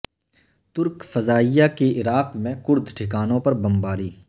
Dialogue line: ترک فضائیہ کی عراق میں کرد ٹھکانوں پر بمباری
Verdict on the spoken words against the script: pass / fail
pass